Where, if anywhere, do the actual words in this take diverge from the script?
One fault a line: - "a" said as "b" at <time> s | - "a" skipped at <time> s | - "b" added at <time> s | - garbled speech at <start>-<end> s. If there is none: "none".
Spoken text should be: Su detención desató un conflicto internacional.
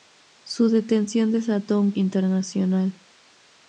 - "conflicto" skipped at 1.9 s